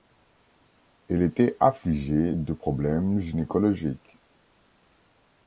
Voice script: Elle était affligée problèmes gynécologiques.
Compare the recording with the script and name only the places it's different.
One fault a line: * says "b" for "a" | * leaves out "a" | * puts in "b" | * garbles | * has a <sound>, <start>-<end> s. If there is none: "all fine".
* puts in "de"